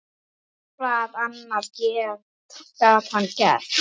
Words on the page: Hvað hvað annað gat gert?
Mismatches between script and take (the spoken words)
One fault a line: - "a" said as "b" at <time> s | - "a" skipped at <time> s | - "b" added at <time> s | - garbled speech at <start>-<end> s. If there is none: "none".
- "hvað" skipped at 1.2 s
- "hann" added at 3.2 s